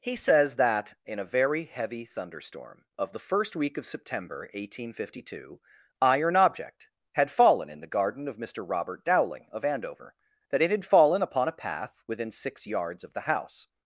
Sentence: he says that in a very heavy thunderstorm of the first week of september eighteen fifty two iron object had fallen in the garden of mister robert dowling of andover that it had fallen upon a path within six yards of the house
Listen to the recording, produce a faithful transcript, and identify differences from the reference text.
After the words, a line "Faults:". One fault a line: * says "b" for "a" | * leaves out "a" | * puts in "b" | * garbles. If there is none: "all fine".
he says that in a very heavy thunderstorm of the first week of september eighteen fifty two iron object had fallen in the garden of mister robert dowling of andover that it had fallen upon a path within six yards of the house
Faults:
all fine